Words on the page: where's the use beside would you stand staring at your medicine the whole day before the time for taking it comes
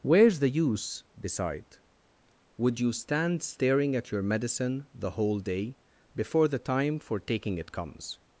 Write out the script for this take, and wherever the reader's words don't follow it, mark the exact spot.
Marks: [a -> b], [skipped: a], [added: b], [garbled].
where's the use beside would you stand staring at your medicine the whole day before the time for taking it comes